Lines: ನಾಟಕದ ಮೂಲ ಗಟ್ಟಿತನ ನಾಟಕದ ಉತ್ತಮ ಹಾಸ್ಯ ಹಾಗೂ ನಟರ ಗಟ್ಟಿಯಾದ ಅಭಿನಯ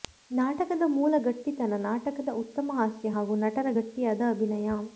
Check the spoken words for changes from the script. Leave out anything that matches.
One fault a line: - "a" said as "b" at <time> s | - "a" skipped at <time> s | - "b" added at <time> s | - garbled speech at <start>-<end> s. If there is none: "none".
none